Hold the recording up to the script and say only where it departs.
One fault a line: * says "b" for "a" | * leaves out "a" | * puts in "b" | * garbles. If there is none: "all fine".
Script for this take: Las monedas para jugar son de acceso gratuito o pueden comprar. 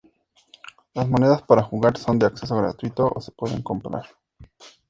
* puts in "se"